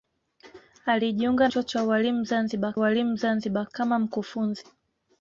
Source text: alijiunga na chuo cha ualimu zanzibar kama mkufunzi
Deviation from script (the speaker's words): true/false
true